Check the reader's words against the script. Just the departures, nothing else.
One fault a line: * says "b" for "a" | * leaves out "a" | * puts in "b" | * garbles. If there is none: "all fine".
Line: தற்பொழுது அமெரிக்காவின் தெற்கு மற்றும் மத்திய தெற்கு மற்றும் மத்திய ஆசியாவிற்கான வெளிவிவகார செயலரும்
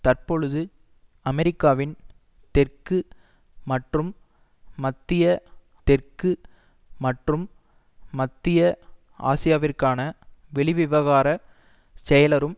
all fine